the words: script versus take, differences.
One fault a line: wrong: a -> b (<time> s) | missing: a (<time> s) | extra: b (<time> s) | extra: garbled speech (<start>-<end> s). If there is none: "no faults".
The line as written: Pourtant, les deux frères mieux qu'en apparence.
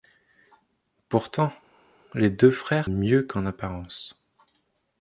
no faults